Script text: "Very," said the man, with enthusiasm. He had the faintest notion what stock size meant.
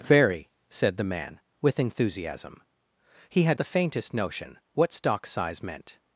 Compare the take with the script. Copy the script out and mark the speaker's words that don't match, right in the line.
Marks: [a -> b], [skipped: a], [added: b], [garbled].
"Very," said the man, with enthusiasm. He had the faintest notion what stock size meant.